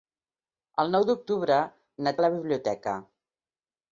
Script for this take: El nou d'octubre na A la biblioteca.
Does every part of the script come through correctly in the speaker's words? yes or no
yes